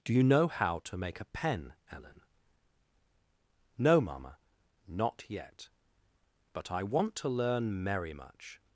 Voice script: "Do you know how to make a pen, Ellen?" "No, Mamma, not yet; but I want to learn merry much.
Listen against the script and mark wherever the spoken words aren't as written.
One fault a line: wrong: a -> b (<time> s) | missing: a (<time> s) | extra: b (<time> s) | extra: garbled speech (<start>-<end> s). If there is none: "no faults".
no faults